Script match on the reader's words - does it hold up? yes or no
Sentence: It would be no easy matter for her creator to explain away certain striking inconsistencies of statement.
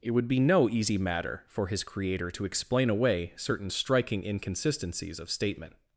no